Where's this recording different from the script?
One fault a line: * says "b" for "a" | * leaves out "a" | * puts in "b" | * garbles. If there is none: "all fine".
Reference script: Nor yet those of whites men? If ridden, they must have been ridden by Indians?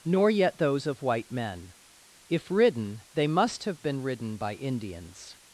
* says "white" for "whites"